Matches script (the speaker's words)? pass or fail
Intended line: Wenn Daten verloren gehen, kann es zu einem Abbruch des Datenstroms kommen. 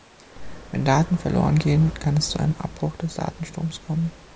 pass